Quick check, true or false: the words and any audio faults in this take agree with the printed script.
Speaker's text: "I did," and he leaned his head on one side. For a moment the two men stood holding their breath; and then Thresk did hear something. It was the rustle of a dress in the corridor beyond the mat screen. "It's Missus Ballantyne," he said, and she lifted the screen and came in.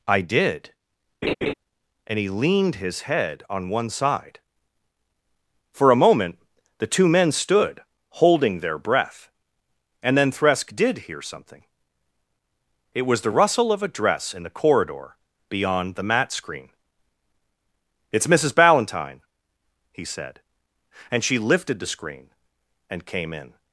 false